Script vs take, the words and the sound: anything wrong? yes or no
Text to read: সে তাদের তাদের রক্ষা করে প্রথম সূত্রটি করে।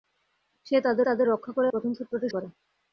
no